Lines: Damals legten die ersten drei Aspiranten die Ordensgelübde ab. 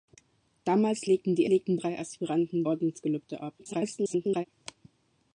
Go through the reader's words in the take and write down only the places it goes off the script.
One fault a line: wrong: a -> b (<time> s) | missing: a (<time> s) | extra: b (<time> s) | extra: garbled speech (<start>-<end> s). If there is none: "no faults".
wrong: ersten -> legten (1.5 s)
missing: die (2.7 s)
extra: garbled speech (3.6-4.5 s)